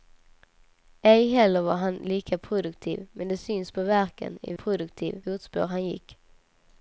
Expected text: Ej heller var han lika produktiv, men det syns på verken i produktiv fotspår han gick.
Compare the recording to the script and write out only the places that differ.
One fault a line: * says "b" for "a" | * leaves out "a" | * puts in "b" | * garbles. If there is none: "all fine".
all fine